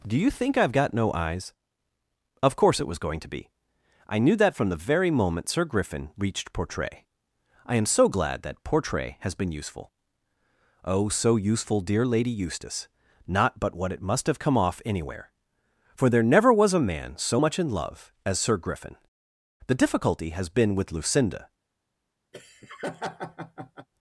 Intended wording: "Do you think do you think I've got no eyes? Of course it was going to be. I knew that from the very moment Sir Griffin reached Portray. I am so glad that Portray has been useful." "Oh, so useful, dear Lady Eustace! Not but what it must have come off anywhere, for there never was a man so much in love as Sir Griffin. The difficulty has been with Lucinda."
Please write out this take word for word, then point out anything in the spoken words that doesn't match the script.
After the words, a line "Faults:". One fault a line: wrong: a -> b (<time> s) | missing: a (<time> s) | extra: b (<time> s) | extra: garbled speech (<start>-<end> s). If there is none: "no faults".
"Do you think I've got no eyes? Of course it was going to be. I knew that from the very moment Sir Griffin reached Portray. I am so glad that Portray has been useful." "Oh, so useful, dear Lady Eustace! Not but what it must have come off anywhere, for there never was a man so much in love as Sir Griffin. The difficulty has been with Lucinda."
Faults:
missing: do you think (0.6 s)